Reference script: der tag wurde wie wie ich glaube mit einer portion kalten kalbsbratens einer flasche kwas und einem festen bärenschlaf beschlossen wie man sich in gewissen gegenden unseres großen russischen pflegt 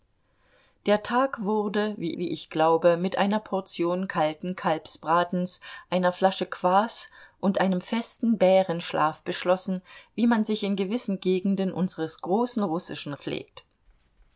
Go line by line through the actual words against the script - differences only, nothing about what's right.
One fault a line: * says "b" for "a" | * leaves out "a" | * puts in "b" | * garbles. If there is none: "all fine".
all fine